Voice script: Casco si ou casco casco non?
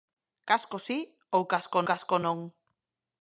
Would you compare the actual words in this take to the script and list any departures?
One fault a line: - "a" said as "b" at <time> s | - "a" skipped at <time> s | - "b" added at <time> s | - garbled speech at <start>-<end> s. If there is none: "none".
none